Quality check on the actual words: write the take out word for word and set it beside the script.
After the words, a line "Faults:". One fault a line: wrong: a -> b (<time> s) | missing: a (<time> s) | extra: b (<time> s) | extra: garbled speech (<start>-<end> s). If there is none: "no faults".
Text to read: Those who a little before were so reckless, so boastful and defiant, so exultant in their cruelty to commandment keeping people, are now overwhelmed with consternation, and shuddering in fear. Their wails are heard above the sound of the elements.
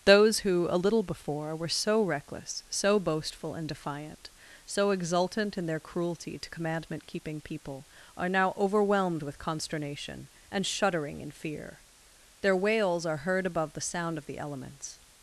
Those who a little before were so reckless, so boastful and defiant, so exultant in their cruelty to commandment keeping people, are now overwhelmed with consternation, and shuddering in fear. Their wails are heard above the sound of the elements.
Faults:
no faults